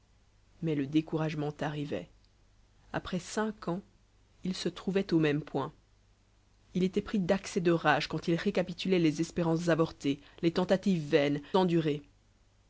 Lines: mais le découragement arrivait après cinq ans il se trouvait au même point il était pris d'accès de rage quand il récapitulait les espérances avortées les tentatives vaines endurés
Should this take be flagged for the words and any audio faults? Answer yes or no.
no